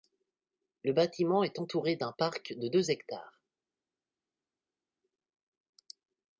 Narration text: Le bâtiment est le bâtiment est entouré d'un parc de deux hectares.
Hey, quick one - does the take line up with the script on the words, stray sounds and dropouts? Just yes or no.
no